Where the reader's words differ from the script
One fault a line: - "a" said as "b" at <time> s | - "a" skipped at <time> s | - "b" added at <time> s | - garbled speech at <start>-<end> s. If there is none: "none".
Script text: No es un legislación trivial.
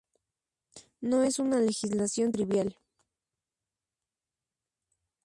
- "un" said as "una" at 1.4 s